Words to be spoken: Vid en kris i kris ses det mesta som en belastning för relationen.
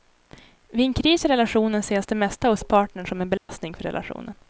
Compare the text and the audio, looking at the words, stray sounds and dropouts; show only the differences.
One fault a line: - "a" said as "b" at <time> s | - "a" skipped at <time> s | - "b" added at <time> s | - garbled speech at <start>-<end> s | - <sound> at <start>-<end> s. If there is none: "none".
- "kris" said as "relationen" at 1.3 s
- "hos partnern" added at 2.5 s
- dropout at 3.4-3.5 s